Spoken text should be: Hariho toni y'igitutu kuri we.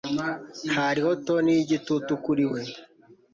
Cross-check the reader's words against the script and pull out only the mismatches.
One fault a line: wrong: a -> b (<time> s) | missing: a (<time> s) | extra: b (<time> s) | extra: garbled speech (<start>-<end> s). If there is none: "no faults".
no faults